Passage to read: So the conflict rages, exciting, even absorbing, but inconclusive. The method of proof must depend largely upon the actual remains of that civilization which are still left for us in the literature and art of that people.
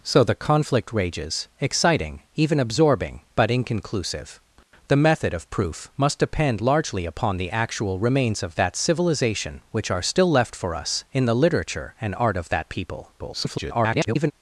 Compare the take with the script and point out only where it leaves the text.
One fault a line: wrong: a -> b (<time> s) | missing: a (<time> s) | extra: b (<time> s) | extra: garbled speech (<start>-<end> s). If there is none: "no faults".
extra: garbled speech (13.2-14.3 s)